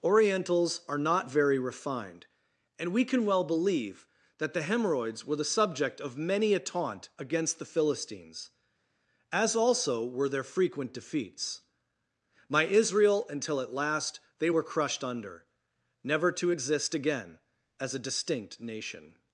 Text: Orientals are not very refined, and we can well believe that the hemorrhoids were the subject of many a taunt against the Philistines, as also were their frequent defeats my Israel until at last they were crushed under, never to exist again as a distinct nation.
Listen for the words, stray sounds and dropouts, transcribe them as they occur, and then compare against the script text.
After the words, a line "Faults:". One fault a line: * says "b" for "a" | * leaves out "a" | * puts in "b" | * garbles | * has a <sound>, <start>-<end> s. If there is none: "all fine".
Orientals are not very refined, and we can well believe that the hemorrhoids were the subject of many a taunt against the Philistines, as also were their frequent defeats my Israel until at last they were crushed under, never to exist again as a distinct nation.
Faults:
all fine